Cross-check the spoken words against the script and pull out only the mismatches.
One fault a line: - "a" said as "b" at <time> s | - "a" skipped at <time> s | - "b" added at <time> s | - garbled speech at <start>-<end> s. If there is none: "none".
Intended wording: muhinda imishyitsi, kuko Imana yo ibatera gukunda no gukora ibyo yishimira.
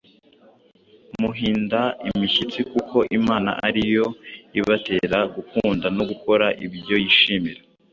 - "ari" added at 3.7 s